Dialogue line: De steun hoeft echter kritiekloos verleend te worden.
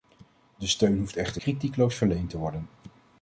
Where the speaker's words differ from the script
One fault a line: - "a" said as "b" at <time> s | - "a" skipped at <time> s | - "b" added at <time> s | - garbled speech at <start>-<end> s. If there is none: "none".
none